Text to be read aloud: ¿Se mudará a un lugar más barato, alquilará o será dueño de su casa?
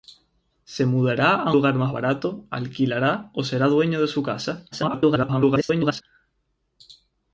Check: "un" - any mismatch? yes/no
yes